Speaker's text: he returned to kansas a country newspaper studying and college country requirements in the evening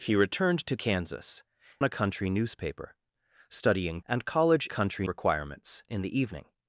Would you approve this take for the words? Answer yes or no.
yes